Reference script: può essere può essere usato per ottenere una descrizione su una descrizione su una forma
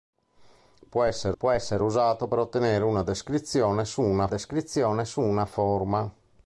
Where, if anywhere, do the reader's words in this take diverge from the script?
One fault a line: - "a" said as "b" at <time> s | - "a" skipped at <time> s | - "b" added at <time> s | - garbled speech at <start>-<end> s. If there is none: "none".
none